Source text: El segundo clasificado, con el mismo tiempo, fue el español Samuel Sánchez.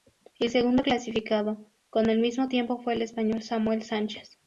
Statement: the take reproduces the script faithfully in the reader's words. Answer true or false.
true